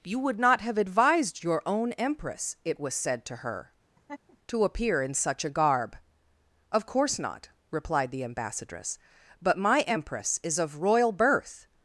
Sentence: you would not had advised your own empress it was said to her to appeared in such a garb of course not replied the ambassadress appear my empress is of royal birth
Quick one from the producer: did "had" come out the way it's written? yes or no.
no